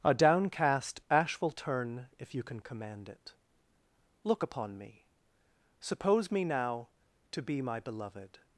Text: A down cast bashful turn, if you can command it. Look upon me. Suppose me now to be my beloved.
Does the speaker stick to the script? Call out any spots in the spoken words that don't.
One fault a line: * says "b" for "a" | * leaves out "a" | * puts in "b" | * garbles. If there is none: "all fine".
* says "downcast ash will" for "down cast bashful"